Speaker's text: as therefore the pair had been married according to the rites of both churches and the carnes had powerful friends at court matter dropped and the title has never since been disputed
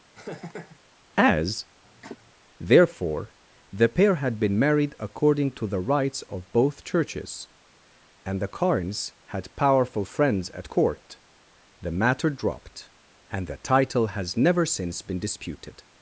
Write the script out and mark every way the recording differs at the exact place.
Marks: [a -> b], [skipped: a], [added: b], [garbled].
as therefore the pair had been married according to the rites of both churches and the carnes had powerful friends at court [added: the] matter dropped and the title has never since been disputed